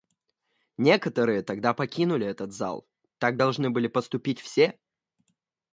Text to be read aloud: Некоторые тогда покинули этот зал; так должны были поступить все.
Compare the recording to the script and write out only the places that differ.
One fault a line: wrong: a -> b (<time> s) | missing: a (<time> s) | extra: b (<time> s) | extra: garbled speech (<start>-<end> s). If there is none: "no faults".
no faults